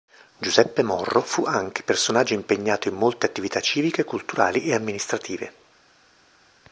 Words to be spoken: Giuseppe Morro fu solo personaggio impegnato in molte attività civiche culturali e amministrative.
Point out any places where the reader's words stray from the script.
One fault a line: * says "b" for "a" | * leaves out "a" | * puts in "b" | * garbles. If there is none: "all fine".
* says "anche" for "solo"